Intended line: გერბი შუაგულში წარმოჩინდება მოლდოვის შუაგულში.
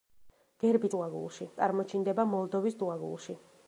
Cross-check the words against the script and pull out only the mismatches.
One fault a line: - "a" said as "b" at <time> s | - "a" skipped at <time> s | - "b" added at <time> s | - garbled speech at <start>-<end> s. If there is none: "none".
none